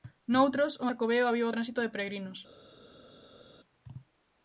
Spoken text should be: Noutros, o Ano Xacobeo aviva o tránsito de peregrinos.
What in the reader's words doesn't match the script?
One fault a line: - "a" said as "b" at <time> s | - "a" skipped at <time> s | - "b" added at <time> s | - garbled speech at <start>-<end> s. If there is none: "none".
- "Ano" skipped at 0.8 s